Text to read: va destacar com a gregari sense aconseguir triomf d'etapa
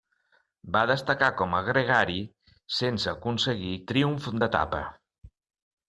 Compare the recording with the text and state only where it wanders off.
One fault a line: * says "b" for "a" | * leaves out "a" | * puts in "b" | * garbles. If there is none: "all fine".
all fine